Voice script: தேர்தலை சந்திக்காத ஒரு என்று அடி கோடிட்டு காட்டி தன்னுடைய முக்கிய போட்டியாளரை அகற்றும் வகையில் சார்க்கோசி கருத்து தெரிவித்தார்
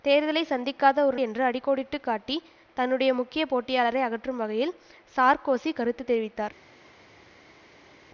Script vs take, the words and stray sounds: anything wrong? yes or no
no